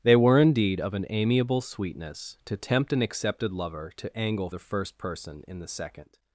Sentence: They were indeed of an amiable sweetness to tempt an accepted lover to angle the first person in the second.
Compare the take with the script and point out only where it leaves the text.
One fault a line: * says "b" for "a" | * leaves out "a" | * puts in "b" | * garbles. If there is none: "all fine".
all fine